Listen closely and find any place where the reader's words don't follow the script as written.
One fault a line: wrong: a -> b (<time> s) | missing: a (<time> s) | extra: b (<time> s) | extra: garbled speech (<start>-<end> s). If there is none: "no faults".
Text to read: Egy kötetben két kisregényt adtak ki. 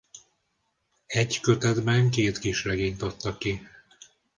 no faults